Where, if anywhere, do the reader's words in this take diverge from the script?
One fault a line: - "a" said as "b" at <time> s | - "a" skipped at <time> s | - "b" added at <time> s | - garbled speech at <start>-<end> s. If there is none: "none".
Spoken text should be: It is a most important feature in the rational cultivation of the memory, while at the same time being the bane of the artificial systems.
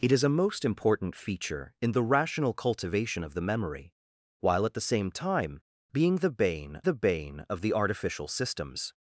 - "the bane" added at 6.8 s